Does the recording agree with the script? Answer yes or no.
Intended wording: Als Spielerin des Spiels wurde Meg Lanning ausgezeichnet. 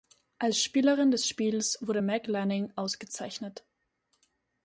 yes